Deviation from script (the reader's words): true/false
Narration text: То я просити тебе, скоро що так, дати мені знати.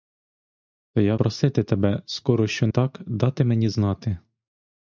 false